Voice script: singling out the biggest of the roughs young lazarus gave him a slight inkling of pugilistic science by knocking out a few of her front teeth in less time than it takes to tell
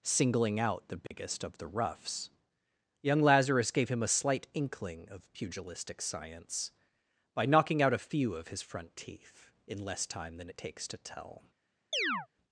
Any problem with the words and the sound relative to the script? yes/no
yes